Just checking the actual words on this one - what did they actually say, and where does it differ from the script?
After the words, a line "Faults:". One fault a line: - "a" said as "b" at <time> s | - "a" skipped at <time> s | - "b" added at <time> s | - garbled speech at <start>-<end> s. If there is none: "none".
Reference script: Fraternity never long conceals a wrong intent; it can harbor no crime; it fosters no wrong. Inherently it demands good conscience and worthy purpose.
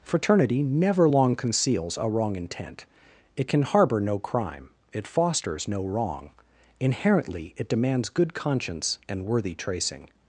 Fraternity never long conceals a wrong intent; it can harbor no crime; it fosters no wrong. Inherently it demands good conscience and worthy tracing.
Faults:
- "purpose" said as "tracing" at 9.5 s